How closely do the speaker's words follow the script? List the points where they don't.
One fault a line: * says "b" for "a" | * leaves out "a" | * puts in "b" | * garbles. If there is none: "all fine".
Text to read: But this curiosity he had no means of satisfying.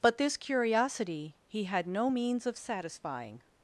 all fine